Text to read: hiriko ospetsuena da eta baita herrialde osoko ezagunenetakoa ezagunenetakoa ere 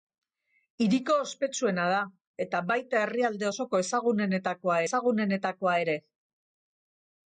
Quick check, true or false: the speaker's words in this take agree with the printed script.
true